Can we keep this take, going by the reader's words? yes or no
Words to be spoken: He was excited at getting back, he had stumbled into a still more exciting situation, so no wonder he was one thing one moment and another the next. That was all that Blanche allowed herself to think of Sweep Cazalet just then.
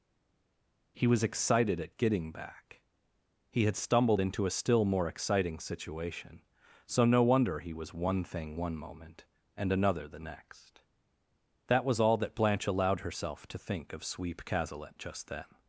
yes